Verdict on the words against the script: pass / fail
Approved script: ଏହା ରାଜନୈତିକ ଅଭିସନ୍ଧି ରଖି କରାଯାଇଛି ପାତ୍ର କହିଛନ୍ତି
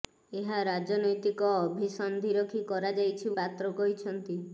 pass